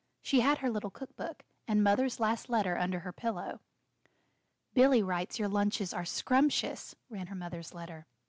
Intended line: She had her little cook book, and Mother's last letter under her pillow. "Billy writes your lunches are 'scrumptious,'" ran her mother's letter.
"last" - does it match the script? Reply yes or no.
yes